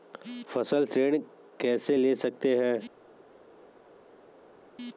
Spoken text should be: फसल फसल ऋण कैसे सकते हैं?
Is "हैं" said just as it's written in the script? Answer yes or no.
yes